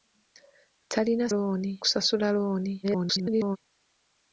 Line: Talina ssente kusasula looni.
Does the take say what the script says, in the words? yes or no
no